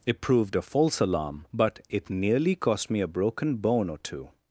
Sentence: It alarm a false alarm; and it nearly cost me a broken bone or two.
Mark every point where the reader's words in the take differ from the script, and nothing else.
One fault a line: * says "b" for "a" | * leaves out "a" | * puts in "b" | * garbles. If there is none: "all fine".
* says "proved" for "alarm"
* says "but" for "and"